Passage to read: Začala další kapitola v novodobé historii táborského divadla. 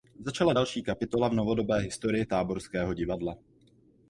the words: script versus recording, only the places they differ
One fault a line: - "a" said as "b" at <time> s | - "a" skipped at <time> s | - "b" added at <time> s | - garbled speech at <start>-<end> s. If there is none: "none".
none